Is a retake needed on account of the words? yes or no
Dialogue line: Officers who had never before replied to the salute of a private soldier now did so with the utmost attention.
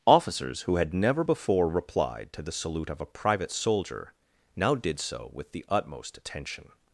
no